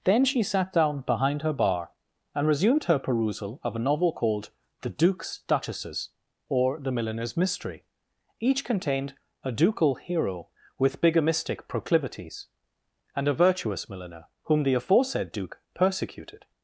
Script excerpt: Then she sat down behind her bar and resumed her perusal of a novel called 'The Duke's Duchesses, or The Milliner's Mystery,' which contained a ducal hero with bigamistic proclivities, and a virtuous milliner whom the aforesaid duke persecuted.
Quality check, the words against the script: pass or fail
fail